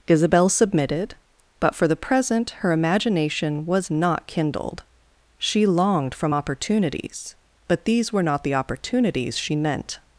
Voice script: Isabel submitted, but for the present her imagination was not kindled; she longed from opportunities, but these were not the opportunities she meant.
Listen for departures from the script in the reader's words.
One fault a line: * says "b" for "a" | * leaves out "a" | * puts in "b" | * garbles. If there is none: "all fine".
all fine